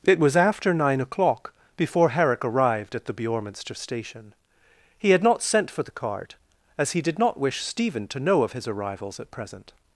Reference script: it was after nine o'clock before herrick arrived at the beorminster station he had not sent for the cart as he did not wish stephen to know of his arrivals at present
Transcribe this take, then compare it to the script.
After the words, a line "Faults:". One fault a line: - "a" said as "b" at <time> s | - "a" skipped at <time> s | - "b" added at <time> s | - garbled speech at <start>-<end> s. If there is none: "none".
it was after nine o'clock before herrick arrived at the beorminster station he had not sent for the cart as he did not wish stephen to know of his arrivals at present
Faults:
none